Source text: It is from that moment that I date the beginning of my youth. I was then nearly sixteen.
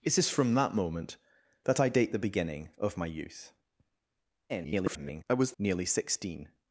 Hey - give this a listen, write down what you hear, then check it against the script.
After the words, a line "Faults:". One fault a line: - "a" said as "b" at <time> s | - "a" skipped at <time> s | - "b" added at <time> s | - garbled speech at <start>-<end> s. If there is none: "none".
It is from that moment that I date the beginning of my youth. [garbled] I was nearly sixteen.
Faults:
- garbled speech at 4.5-5.2 s
- "then" skipped at 5.5 s